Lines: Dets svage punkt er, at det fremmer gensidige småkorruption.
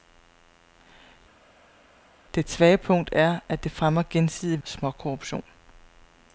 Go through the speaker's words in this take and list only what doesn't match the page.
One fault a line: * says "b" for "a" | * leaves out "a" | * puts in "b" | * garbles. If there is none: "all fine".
all fine